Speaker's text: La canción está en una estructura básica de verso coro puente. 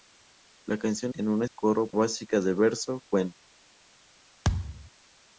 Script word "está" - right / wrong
wrong